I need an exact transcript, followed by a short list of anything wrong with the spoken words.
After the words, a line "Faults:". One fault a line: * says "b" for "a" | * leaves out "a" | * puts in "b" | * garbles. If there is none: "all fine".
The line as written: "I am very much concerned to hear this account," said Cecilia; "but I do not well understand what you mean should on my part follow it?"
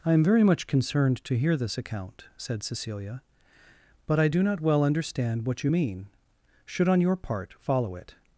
"I am very much concerned to hear this account," said Cecilia; "but I do not well understand what you mean should on your part follow it?"
Faults:
* says "your" for "my"